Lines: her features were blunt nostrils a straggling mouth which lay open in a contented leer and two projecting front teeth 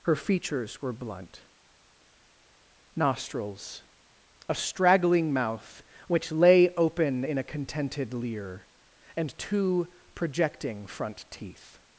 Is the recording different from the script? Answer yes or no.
no